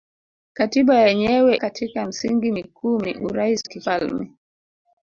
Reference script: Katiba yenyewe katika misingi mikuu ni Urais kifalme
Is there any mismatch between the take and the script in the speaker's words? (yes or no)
no